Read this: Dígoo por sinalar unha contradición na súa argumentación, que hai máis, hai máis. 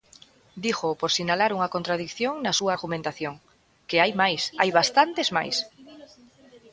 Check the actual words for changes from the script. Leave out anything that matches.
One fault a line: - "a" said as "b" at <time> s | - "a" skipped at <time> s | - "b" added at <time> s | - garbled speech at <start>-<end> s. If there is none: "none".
- "bastantes" added at 4.8 s